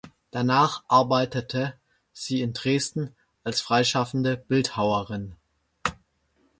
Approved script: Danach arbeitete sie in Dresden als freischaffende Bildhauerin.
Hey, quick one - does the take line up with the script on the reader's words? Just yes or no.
yes